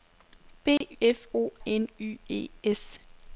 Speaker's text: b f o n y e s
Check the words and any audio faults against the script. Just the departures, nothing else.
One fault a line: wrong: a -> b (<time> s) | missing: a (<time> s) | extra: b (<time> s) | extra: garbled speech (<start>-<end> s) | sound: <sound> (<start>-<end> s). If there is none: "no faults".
sound: dropout (0.8-0.8 s)